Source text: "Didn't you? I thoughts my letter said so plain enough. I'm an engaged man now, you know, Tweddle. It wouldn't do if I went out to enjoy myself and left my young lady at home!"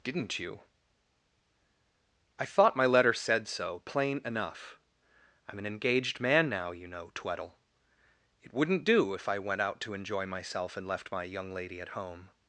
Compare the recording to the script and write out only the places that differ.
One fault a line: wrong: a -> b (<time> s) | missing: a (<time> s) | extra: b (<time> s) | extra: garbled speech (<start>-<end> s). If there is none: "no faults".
wrong: thoughts -> thought (2.5 s)